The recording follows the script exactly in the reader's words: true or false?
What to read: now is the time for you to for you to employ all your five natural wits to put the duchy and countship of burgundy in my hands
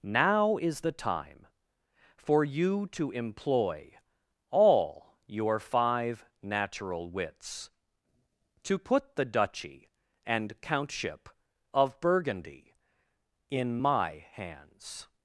false